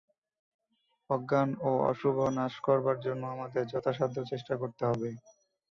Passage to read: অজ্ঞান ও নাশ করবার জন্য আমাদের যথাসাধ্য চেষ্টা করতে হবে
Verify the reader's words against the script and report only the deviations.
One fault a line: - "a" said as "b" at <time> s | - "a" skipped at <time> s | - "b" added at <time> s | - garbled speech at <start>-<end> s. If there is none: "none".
- "অশুভ" added at 1.9 s